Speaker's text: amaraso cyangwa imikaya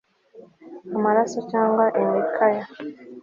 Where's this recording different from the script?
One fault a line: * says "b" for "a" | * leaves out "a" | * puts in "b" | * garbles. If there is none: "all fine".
all fine